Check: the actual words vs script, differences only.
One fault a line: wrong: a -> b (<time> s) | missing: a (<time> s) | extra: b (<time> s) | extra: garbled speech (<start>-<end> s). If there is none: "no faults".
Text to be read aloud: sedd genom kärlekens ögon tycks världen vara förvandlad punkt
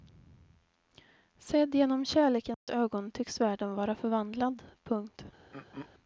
no faults